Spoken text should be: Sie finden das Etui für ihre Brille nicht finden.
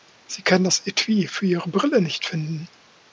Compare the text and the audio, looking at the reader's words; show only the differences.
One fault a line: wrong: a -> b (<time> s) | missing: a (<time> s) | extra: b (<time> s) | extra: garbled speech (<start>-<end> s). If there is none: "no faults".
wrong: finden -> kann (0.4 s)